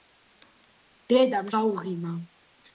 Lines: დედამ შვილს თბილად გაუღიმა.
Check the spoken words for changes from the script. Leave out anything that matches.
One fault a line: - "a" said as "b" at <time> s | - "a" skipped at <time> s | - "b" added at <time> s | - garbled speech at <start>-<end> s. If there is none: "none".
- "შვილს თბილად" skipped at 1.5 s